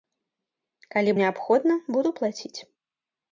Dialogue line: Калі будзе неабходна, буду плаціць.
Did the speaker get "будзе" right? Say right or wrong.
wrong